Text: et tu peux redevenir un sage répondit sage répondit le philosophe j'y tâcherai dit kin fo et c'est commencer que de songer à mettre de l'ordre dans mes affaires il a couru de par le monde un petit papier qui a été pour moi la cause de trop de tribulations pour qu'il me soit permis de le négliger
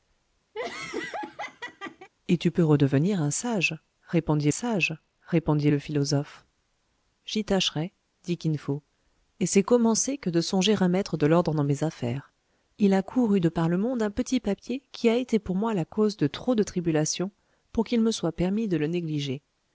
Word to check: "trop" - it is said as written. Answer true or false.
true